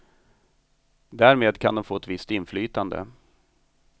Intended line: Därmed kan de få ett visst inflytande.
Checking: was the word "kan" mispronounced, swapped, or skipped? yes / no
no